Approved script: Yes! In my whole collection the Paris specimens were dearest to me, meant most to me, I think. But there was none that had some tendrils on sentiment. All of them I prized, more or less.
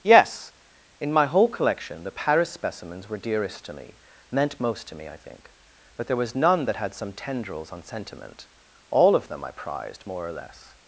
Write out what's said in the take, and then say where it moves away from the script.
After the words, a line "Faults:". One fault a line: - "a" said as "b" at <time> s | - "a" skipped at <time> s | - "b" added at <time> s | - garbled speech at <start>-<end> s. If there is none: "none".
Yes! In my whole collection the Paris specimens were dearest to me, meant most to me, I think. But there was none that had some tendrils on sentiment. All of them I prized, more or less.
Faults:
none